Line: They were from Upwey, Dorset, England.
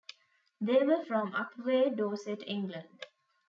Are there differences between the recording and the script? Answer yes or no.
no